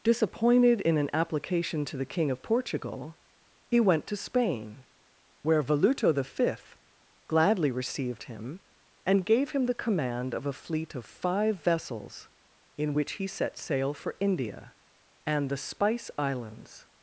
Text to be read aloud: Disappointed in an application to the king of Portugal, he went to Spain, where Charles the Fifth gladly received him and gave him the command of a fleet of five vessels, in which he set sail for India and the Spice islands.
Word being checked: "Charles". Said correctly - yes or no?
no